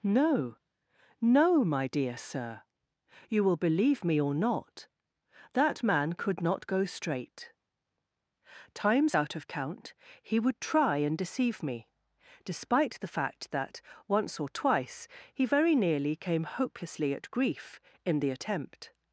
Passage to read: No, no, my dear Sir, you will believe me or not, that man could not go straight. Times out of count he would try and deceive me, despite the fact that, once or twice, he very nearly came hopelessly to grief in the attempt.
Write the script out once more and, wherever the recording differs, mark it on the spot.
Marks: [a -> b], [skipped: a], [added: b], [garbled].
No, no, my dear Sir, you will believe me or not, that man could not go straight. Times out of count he would try and deceive me, despite the fact that, once or twice, he very nearly came hopelessly [to -> at] grief in the attempt.